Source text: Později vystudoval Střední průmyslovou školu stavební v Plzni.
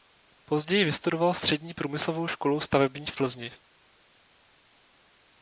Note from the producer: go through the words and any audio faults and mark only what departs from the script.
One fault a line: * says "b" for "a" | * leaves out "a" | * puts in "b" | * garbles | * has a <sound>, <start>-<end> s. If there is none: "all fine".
all fine